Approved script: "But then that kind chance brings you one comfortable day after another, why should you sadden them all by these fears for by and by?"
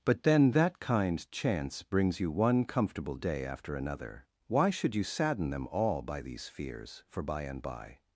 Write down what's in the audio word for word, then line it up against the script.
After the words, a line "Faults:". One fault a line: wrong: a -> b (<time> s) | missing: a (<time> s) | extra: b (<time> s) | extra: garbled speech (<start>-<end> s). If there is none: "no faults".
"But then that kind chance brings you one comfortable day after another, why should you sadden them all by these fears for by and by?"
Faults:
no faults